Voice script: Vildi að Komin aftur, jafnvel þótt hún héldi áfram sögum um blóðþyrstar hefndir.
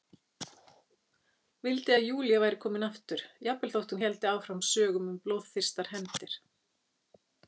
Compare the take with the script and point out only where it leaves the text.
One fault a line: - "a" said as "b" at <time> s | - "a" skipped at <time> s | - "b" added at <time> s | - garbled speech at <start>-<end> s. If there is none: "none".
- "Júlía væri" added at 2.1 s